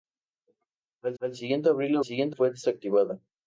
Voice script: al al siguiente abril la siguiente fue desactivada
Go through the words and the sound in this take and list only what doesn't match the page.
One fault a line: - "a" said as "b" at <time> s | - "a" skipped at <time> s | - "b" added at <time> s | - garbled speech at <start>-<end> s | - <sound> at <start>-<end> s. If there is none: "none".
none